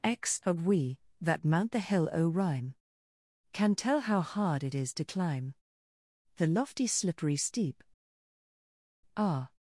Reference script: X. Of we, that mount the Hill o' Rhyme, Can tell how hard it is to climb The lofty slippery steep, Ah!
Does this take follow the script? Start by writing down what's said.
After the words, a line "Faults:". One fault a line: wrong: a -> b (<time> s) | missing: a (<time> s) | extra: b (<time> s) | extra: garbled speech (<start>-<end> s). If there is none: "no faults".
X. Of we, that mount the Hill o' Rhyme, Can tell how hard it is to climb The lofty slippery steep, Ah!
Faults:
no faults